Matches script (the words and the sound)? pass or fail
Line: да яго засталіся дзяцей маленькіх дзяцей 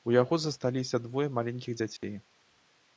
fail